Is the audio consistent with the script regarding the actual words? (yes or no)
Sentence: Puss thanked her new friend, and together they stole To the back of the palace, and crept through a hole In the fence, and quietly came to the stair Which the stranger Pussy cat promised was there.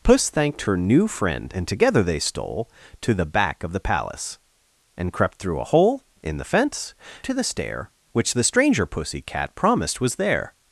no